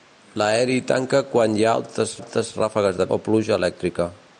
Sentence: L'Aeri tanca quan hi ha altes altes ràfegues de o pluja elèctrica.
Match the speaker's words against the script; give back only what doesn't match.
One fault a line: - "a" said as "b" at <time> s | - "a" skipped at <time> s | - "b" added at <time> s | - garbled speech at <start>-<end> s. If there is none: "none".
none